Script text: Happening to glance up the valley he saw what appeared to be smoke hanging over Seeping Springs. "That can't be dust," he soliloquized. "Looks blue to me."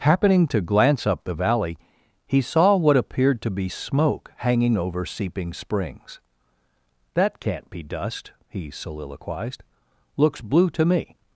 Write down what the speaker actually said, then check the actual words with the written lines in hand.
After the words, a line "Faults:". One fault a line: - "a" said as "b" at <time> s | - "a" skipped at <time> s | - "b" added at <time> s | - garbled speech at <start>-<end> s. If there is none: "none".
Happening to glance up the valley he saw what appeared to be smoke hanging over Seeping Springs. "That can't be dust," he soliloquized. "Looks blue to me."
Faults:
none